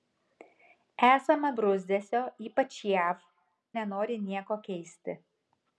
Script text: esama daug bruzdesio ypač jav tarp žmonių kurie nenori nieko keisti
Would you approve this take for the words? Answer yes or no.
no